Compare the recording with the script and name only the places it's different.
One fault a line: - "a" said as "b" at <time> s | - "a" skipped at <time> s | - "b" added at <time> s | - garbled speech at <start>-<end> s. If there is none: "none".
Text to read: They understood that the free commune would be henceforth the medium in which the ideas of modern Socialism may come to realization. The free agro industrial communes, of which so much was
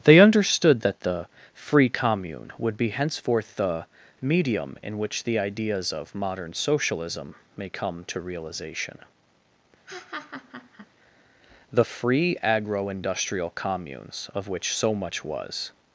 none